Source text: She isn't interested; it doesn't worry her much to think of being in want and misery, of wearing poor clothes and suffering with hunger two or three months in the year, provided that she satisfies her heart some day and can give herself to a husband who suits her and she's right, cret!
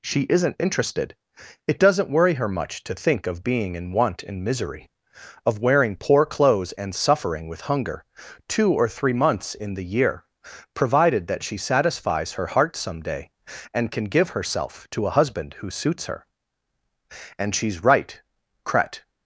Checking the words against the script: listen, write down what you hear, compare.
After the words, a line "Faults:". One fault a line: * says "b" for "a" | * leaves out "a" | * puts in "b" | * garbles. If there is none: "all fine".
She isn't interested; it doesn't worry her much to think of being in want and misery, of wearing poor clothes and suffering with hunger two or three months in the year, provided that she satisfies her heart some day and can give herself to a husband who suits her and she's right, cret!
Faults:
all fine